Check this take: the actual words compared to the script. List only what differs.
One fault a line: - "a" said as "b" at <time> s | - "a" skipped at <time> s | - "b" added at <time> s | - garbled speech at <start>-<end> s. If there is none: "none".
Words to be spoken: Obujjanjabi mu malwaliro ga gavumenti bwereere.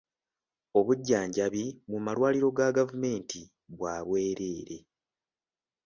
- "bwa" added at 3.8 s